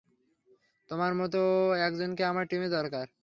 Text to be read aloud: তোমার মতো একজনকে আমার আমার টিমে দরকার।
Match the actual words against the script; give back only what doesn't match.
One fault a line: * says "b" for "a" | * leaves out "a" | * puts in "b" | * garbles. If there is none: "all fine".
* leaves out "আমার"